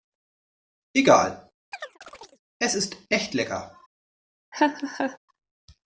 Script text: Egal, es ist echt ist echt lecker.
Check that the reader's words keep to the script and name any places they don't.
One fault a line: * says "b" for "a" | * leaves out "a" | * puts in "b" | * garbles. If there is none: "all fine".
* leaves out "ist echt"